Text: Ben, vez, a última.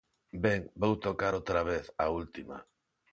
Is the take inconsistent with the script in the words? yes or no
yes